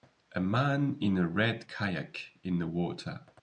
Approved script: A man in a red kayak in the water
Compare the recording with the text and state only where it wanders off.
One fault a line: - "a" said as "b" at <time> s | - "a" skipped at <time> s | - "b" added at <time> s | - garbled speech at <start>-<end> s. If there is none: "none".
none